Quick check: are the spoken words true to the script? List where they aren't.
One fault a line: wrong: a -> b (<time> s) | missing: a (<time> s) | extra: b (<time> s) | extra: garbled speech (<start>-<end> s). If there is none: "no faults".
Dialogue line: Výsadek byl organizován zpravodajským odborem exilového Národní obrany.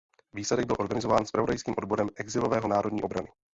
no faults